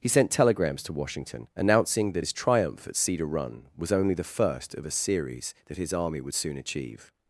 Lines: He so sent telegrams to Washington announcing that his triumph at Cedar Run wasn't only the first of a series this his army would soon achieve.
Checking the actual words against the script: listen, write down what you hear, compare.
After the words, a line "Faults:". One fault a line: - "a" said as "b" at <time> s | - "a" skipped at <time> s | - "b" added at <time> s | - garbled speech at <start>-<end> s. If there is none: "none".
He sent telegrams to Washington announcing that his triumph at Cedar Run was only the first of a series that his army would soon achieve.
Faults:
- "so" skipped at 0.1 s
- "wasn't" said as "was" at 3.7 s
- "this" said as "that" at 5.7 s